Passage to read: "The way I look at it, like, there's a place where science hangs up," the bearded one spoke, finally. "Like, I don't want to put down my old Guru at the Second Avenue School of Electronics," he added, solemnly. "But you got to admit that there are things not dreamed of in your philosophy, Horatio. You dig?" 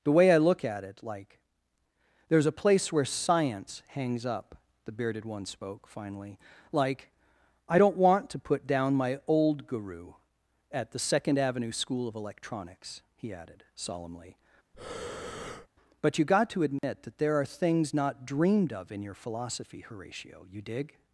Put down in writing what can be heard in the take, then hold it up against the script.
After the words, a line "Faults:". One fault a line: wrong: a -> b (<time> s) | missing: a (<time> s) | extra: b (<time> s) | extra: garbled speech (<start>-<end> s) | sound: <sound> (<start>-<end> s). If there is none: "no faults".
"The way I look at it, like, there's a place where science hangs up," the bearded one spoke, finally. "Like, I don't want to put down my old Guru at the Second Avenue School of Electronics," he added, solemnly. "But you got to admit that there are things not dreamed of in your philosophy, Horatio. You dig?"
Faults:
sound: breath (14.7-15.7 s)
sound: dropout (16.8-16.8 s)